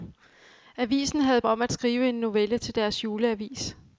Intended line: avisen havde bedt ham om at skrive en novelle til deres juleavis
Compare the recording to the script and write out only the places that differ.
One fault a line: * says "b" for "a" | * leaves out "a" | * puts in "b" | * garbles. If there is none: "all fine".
* leaves out "bedt ham"